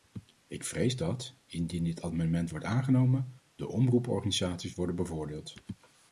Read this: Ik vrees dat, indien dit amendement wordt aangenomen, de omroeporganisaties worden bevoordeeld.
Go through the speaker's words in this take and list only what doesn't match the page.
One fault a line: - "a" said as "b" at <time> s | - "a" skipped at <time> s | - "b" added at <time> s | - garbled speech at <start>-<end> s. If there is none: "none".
none